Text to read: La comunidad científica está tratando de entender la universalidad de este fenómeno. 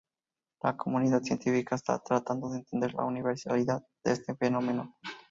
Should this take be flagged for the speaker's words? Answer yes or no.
no